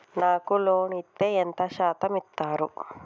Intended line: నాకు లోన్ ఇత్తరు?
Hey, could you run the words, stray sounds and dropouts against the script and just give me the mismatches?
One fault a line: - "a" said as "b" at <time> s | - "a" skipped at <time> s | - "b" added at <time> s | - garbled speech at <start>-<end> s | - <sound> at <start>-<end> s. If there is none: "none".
- "ఇత్తే ఎంత శాతం" added at 0.9 s